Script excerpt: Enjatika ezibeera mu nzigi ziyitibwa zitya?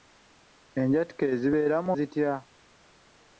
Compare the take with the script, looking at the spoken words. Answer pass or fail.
fail